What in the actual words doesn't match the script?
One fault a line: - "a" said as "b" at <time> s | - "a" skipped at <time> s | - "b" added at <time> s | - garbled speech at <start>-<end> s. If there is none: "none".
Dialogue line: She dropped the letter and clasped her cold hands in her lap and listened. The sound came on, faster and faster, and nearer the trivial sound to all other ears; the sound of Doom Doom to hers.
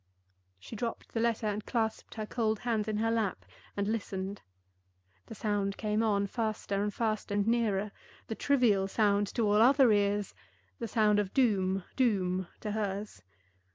none